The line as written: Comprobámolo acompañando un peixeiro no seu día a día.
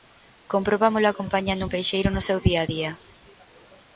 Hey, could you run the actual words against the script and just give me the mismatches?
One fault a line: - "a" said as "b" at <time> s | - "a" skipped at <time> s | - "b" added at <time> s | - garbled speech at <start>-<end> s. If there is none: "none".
none